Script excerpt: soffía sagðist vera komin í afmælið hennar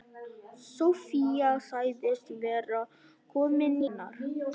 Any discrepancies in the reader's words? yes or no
yes